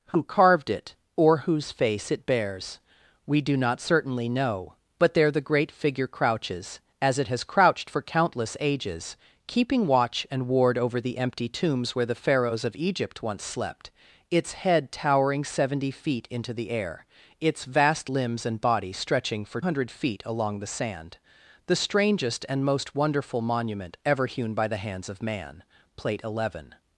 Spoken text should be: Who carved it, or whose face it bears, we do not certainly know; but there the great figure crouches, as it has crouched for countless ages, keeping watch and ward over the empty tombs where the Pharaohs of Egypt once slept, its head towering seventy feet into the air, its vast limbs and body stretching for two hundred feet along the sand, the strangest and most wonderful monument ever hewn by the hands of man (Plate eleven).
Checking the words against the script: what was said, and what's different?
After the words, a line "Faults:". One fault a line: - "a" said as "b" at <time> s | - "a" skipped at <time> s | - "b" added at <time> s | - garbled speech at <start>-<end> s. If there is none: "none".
Who carved it, or whose face it bears, we do not certainly know; but there the great figure crouches, as it has crouched for countless ages, keeping watch and ward over the empty tombs where the Pharaohs of Egypt once slept, its head towering seventy feet into the air, its vast limbs and body stretching for hundred feet along the sand, the strangest and most wonderful monument ever hewn by the hands of man (Plate eleven).
Faults:
- "two" skipped at 19.6 s